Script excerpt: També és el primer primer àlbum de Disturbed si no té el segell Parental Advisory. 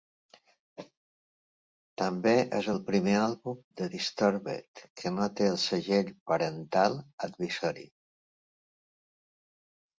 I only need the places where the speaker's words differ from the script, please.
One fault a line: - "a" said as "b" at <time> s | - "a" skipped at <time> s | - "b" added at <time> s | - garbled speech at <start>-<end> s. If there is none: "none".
- "primer" skipped at 3.2 s
- "si" said as "que" at 5.0 s